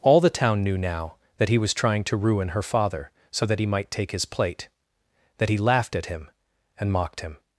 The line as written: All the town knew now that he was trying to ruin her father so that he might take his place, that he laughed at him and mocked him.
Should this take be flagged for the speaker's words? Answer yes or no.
yes